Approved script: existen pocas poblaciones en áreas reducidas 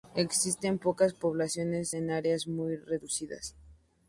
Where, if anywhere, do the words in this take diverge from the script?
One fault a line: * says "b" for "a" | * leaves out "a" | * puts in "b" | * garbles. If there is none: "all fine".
* puts in "muy"